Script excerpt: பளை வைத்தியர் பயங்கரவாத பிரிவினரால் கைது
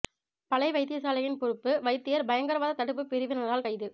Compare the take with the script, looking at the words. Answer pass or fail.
fail